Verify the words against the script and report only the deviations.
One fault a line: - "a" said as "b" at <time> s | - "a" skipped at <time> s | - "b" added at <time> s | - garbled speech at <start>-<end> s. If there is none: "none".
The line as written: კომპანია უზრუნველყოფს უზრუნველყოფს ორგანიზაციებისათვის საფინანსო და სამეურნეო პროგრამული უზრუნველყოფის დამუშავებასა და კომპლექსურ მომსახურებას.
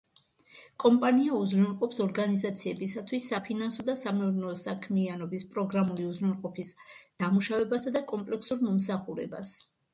- "უზრუნველყოფს" skipped at 2.0 s
- "საქმიანობის" added at 4.6 s